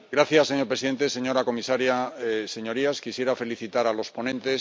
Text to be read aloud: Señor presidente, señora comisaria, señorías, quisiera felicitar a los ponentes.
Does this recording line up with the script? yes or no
yes